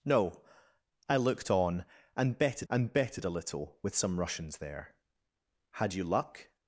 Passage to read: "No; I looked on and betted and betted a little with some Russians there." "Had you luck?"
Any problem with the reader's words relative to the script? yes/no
no